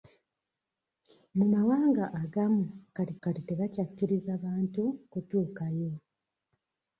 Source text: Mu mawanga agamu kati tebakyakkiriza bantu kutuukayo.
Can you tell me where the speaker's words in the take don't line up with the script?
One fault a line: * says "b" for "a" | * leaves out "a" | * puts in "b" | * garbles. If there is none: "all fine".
* puts in "kati"